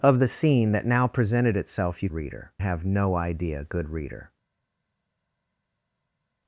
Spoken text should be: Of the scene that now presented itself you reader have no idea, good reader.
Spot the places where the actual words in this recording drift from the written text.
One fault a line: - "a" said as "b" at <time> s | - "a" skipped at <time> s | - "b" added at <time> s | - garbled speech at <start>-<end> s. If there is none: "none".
none